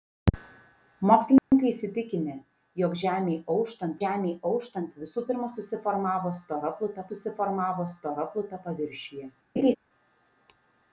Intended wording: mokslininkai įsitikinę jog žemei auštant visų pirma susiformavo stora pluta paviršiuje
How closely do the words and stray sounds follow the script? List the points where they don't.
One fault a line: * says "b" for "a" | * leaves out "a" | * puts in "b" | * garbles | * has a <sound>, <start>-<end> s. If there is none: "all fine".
* has a dropout, 1.4-1.5 s
* puts in "žemei auštant"
* puts in "susiformavo stora pluta"
* has a laugh, 9.6-9.8 s